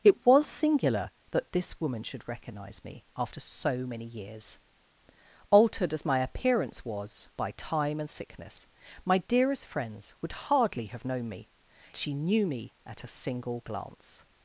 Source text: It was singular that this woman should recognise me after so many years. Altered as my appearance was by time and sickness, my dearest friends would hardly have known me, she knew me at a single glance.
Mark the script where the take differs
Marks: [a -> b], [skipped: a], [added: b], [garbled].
It was singular that this woman should recognise me after so many years. Altered as my appearance was by time and sickness, my dearest friends would hardly have known me, she knew me at a single glance.